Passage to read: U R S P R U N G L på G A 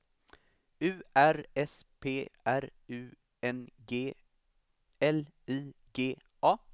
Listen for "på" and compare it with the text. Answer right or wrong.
wrong